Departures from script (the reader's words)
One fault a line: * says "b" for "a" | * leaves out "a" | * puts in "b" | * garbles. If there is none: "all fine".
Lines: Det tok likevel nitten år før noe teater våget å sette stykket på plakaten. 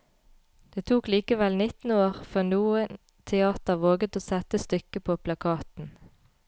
all fine